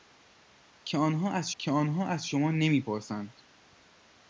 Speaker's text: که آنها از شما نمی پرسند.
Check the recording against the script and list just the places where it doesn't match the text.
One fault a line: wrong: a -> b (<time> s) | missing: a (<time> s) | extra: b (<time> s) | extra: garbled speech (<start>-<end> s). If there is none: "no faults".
extra: که آنها از (1.6 s)